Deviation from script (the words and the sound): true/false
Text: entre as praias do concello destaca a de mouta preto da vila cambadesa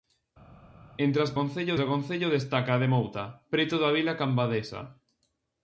true